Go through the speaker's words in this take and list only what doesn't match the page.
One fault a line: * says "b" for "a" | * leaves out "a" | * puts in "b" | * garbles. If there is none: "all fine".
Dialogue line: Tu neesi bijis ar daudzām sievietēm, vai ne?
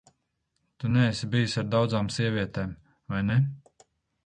all fine